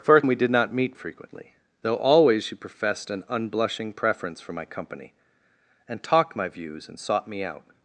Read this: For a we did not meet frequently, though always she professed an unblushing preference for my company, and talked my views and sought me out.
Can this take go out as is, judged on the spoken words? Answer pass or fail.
pass